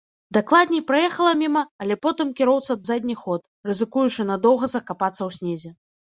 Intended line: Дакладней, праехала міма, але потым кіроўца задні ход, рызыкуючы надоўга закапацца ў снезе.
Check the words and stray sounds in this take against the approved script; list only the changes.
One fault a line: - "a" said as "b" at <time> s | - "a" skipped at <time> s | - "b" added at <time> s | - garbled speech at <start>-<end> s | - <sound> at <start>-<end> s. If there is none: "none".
none